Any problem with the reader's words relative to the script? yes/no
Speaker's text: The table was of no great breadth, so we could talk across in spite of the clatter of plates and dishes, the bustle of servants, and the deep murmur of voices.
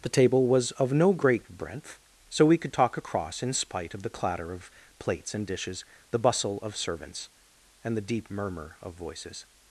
no